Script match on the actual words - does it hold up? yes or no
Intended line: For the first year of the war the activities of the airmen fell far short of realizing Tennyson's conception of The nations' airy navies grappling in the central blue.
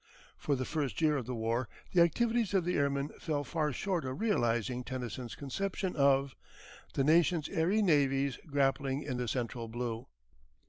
yes